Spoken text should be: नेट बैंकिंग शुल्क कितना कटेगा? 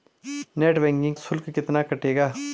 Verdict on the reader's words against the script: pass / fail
pass